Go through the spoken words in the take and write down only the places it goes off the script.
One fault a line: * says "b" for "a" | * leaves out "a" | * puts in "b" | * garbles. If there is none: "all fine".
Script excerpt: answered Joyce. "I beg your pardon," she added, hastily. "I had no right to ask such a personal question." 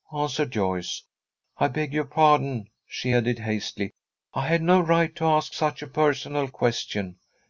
all fine